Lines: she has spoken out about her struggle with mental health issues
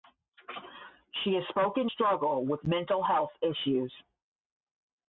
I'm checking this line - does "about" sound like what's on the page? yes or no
no